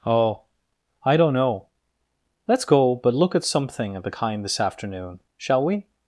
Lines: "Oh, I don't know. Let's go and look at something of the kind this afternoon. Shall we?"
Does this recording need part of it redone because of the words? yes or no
yes